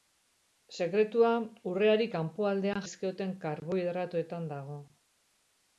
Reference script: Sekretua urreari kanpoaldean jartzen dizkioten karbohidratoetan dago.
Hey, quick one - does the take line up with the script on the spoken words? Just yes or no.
no